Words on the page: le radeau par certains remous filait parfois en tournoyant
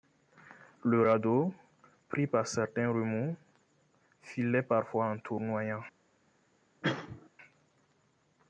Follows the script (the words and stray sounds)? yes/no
no